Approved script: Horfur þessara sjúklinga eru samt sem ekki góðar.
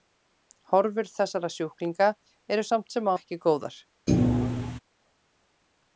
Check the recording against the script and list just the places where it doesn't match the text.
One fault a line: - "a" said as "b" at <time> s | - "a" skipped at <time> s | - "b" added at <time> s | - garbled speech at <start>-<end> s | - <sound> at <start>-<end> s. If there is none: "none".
- thud at 4.1-4.8 s